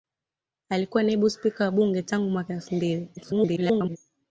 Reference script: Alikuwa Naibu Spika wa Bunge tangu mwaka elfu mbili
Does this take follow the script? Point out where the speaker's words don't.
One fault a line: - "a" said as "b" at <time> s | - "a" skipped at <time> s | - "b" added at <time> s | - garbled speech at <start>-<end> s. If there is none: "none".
- garbled speech at 3.2-4.0 s